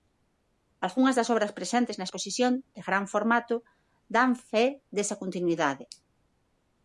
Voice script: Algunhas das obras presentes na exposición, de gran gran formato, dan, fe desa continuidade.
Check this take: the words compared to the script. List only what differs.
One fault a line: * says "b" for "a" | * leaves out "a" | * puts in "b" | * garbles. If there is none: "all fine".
* leaves out "gran"